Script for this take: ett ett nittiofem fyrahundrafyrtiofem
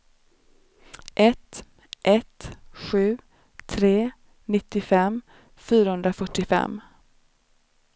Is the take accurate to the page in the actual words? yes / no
no